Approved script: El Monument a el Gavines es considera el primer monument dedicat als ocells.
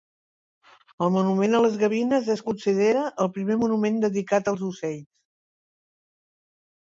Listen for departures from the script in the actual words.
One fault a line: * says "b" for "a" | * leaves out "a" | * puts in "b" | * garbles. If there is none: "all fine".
* says "les" for "el"